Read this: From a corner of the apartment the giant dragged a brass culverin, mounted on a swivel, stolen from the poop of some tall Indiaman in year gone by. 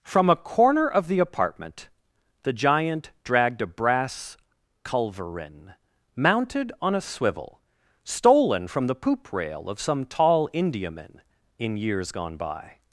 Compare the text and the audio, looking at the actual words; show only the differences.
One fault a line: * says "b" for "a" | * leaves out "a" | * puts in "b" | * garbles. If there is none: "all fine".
* puts in "rail"
* says "years" for "year"